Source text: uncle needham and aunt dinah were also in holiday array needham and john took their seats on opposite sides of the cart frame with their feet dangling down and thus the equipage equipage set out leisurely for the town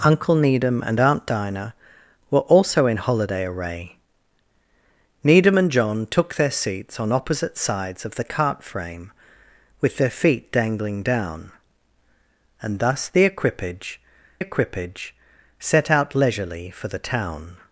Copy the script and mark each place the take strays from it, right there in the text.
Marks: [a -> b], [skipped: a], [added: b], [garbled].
uncle needham and aunt dinah were also in holiday array needham and john took their seats on opposite sides of the cart frame with their feet dangling down and thus the equipage equipage set out leisurely for the town